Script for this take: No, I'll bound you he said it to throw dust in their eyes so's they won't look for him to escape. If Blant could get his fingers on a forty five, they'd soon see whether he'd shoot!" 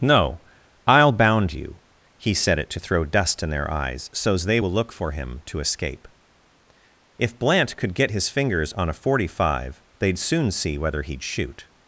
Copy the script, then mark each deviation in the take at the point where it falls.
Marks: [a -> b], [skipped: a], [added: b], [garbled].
No, I'll bound you he said it to throw dust in their eyes so's they [won't -> will] look for him to escape. If Blant could get his fingers on a forty five, they'd soon see whether he'd shoot!"